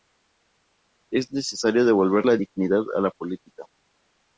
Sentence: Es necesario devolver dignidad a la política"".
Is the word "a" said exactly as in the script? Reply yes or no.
yes